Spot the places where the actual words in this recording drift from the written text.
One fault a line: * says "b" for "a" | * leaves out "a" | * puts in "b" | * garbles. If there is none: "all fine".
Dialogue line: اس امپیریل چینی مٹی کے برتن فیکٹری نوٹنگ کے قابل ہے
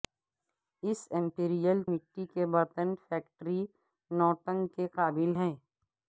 * leaves out "چینی"